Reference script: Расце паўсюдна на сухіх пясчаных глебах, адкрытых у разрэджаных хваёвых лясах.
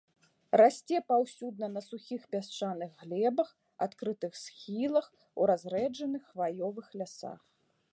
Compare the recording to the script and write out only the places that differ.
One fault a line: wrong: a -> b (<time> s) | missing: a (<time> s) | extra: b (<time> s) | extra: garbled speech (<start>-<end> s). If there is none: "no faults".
extra: схілах (4.5 s)